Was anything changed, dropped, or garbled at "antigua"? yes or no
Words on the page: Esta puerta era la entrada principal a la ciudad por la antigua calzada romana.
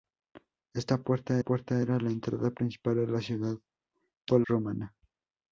yes